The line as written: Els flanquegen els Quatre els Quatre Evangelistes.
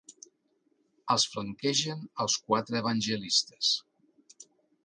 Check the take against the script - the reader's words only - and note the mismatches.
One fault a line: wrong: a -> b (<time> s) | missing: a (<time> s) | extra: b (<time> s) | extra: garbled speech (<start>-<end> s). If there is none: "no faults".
missing: els Quatre (2.8 s)